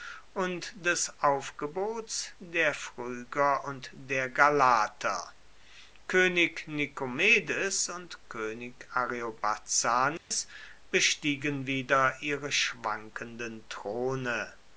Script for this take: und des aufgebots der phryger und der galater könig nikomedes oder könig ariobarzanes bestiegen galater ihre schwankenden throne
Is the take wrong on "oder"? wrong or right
wrong